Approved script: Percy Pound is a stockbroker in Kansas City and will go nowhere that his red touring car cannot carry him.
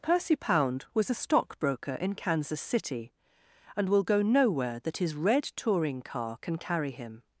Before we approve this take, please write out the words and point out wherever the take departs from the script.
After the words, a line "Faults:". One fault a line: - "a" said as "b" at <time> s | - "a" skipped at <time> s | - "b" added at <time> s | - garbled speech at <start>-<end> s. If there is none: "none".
Percy Pound was a stockbroker in Kansas City and will go nowhere that his red touring car can carry him.
Faults:
- "is" said as "was" at 0.9 s
- "cannot" said as "can" at 6.4 s